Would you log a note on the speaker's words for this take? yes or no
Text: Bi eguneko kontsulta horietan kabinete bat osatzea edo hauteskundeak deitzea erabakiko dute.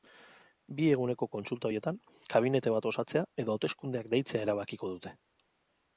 no